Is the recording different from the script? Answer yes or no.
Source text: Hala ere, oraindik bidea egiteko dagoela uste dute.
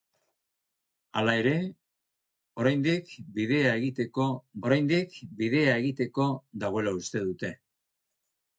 yes